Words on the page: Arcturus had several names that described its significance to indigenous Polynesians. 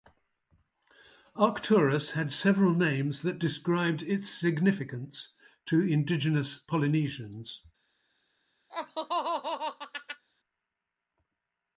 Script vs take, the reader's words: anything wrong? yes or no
no